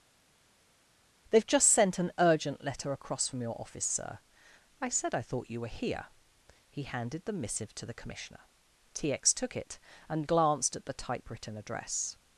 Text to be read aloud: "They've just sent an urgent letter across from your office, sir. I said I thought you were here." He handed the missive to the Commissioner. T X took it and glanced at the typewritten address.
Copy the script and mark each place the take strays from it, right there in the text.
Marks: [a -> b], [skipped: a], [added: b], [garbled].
"They've just sent an urgent letter across from your office, sir. I said I thought you were here." He handed the missive to the Commissioner. T X took it and glanced at the typewritten address.